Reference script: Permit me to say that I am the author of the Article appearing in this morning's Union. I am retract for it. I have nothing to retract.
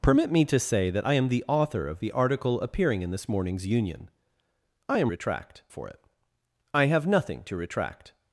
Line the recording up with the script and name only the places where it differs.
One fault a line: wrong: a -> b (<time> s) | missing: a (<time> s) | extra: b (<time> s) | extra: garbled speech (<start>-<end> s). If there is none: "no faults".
no faults